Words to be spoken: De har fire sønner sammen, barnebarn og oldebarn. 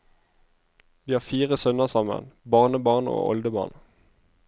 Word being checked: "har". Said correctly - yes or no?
yes